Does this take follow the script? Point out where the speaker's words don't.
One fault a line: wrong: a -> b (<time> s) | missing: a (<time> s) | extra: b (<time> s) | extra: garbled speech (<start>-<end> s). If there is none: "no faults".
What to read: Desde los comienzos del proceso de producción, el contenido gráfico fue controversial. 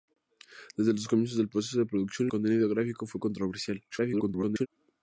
missing: el (2.3 s)
extra: garbled speech (3.9-4.7 s)